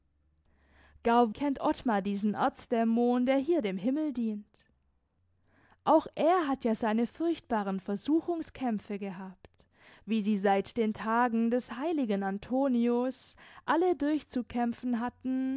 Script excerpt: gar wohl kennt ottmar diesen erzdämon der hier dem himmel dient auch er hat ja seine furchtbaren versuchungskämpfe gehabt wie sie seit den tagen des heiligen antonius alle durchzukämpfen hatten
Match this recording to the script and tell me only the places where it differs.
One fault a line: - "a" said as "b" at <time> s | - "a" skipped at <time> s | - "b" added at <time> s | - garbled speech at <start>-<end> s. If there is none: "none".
- "wohl" skipped at 1.3 s